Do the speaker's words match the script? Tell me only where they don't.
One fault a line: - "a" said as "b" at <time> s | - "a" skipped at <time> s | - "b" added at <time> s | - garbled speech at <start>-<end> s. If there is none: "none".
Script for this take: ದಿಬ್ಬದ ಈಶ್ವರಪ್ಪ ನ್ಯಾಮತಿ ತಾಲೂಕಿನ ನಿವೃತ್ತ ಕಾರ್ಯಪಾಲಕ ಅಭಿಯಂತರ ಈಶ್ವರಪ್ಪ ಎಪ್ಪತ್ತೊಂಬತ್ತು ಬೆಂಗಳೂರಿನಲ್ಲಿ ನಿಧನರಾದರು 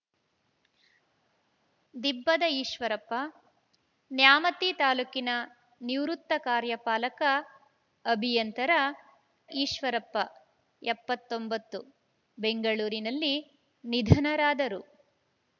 none